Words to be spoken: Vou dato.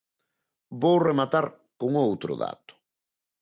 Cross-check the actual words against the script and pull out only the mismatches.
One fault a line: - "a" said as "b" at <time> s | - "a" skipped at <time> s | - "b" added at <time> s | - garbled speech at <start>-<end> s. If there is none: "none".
- "rematar con outro" added at 1.1 s